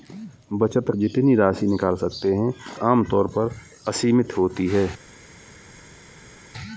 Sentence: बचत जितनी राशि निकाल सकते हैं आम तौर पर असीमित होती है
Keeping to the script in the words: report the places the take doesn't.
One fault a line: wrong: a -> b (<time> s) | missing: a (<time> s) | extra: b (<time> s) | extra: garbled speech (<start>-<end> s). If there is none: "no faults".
no faults